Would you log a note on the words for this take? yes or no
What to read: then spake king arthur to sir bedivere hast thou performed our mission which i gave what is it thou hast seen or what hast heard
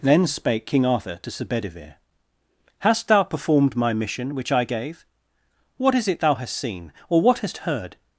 yes